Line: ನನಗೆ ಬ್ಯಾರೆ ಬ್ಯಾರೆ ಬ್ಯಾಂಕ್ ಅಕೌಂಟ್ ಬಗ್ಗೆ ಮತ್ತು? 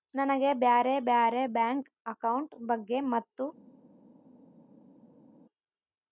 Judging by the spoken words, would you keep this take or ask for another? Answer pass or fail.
pass